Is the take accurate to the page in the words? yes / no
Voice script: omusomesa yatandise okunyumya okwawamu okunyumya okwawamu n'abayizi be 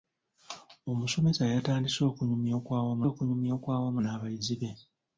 yes